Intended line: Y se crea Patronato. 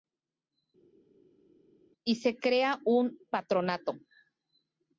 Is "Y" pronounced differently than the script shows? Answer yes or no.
no